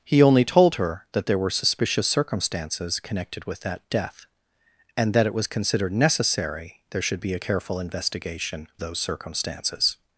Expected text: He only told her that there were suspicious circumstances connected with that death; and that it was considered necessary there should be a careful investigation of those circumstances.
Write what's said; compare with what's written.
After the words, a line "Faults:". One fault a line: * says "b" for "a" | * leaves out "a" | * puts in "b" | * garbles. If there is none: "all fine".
He only told her that there were suspicious circumstances connected with that death; and that it was considered necessary there should be a careful investigation those circumstances.
Faults:
* leaves out "of"